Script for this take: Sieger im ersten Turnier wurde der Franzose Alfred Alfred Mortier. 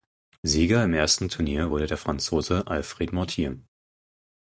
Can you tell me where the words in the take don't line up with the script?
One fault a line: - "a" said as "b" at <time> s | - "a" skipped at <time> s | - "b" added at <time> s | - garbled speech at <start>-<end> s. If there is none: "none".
- "Alfred" skipped at 3.1 s